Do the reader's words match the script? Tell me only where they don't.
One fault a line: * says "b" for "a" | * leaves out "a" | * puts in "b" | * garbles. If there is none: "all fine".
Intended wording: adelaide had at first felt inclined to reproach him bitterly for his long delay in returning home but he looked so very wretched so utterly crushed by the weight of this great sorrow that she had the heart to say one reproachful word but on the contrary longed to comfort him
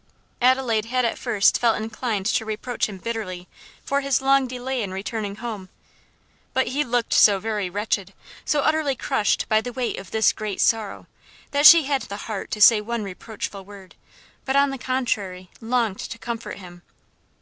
all fine